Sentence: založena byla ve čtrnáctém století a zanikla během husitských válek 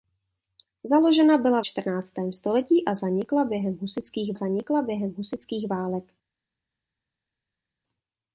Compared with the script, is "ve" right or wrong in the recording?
wrong